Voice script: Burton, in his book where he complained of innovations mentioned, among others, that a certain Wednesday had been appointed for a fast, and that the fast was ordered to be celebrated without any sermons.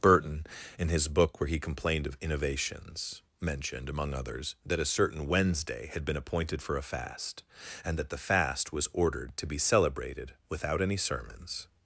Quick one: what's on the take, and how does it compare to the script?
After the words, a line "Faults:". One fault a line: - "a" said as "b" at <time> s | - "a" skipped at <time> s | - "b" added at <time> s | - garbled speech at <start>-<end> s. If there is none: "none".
Burton, in his book where he complained of innovations mentioned, among others, that a certain Wednesday had been appointed for a fast, and that the fast was ordered to be celebrated without any sermons.
Faults:
none